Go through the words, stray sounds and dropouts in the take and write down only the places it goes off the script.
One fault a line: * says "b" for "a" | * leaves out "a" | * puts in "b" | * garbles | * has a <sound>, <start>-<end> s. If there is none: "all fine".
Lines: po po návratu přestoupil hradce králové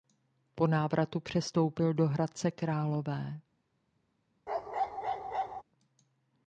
* leaves out "po"
* puts in "do"
* has a bark, 4.5-5.6 s